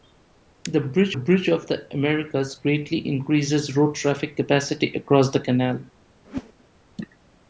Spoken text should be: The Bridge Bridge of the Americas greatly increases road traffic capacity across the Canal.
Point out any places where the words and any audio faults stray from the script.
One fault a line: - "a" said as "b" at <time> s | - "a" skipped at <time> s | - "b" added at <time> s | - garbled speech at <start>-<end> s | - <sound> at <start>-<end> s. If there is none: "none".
- whoosh at 6.2-6.5 s